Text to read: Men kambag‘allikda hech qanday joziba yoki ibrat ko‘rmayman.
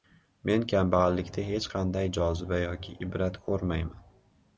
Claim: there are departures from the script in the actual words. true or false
false